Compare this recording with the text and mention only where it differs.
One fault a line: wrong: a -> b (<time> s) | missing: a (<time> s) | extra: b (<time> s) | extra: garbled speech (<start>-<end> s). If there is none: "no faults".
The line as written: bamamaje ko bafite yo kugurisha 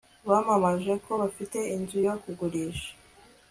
extra: inzu (1.7 s)